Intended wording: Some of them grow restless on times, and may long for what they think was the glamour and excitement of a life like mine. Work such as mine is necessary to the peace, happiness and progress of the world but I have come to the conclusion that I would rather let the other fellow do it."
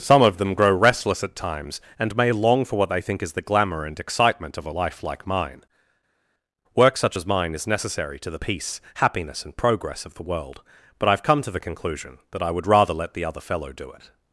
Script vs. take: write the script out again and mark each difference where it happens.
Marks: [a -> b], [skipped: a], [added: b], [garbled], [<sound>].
Some of them grow restless [on -> at] times, and may long for what they think [was -> is] the glamour and excitement of a life like mine. Work such as mine is necessary to the peace, happiness and progress of the world but I have come to the conclusion that I would rather let the other fellow do it."